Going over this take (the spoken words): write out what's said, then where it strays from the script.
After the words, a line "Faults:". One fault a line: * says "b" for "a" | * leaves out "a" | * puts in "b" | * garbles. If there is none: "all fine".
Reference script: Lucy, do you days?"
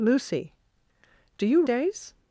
Lucy, do you days?"
Faults:
all fine